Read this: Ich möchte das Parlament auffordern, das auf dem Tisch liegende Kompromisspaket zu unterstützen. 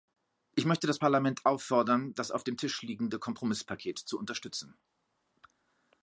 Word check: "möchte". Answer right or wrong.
right